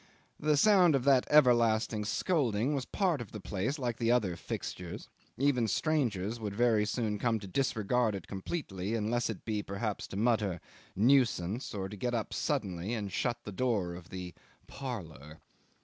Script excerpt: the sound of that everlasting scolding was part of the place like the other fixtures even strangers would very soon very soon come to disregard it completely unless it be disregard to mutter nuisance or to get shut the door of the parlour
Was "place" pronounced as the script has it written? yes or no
yes